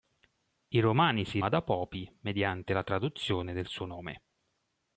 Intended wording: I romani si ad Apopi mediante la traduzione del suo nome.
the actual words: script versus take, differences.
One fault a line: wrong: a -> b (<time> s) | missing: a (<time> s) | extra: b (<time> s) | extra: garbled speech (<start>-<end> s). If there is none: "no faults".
no faults